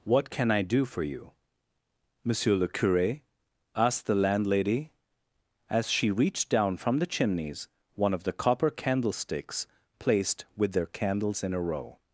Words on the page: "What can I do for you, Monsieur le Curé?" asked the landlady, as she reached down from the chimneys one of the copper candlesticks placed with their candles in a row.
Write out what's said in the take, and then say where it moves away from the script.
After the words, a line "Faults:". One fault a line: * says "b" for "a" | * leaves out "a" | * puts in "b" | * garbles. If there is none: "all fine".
"What can I do for you, Monsieur le Curé?" asked the landlady, as she reached down from the chimneys one of the copper candlesticks placed with their candles in a row.
Faults:
all fine